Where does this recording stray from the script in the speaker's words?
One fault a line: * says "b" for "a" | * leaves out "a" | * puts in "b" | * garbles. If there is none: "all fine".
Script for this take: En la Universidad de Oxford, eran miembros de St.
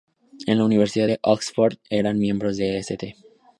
all fine